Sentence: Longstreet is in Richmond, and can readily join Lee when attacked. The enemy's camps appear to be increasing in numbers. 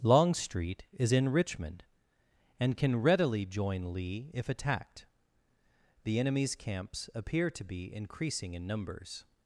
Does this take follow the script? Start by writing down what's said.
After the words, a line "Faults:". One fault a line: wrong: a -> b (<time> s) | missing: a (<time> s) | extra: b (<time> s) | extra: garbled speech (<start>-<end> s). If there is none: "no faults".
Longstreet is in Richmond, and can readily join Lee if attacked. The enemy's camps appear to be increasing in numbers.
Faults:
wrong: when -> if (4.3 s)